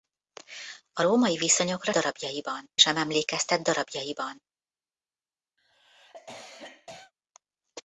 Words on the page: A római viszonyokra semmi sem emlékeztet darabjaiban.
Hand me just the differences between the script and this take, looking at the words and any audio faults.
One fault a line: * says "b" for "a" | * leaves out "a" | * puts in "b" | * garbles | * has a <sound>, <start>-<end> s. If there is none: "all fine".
* says "darabjaiban" for "semmi"
* has a cough, 5.6-7.1 s